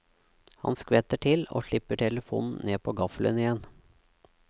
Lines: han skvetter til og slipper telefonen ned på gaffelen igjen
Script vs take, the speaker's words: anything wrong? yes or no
no